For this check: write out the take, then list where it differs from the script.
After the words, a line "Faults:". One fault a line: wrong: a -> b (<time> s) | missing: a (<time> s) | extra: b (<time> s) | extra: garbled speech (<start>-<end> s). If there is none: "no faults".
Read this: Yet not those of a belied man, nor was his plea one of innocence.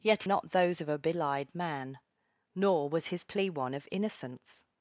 Yet not those of a belied man, nor was his plea one of innocence.
Faults:
no faults